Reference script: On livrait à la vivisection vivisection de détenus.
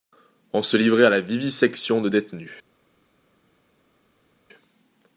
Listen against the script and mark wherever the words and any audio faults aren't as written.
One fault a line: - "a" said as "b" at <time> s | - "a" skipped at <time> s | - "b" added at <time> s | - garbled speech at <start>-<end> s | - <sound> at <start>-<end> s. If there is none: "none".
- "se" added at 0.6 s
- "vivisection" skipped at 2.0 s